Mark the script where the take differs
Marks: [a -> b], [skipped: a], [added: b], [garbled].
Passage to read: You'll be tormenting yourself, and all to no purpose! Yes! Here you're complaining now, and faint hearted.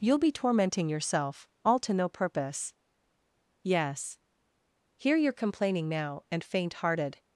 You'll be tormenting yourself, [skipped: and] all to no purpose! Yes! Here you're complaining now, and faint hearted.